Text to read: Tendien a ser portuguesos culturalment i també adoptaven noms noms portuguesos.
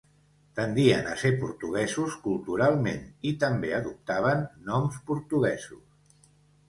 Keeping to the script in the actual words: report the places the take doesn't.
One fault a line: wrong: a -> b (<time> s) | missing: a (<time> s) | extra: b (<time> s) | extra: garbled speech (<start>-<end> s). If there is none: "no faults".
missing: noms (5.0 s)